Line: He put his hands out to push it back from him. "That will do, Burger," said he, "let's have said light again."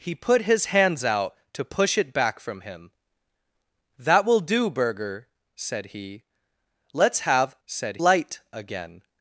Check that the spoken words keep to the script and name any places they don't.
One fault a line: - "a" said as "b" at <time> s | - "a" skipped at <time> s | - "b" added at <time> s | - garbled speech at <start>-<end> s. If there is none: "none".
none